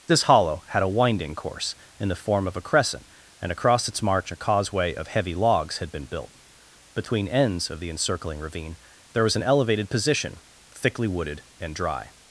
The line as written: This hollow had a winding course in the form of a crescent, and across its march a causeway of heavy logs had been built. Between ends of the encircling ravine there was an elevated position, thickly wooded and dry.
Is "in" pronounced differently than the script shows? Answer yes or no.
no